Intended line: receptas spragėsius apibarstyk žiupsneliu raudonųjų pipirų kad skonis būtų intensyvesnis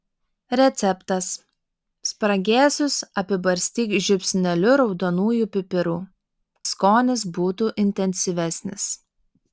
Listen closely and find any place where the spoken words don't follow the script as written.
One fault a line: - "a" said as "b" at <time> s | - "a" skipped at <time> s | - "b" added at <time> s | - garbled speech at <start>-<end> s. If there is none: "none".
- "kad" skipped at 6.0 s